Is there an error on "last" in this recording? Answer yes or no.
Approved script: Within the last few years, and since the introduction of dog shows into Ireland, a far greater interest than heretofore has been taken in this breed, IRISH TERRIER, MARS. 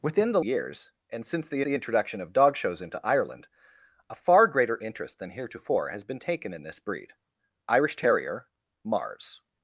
yes